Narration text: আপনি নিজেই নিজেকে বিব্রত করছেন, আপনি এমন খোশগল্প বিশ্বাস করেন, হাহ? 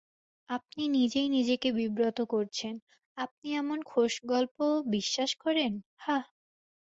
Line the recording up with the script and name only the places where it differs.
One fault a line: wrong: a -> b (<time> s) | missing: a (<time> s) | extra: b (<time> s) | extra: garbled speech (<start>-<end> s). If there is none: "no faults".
no faults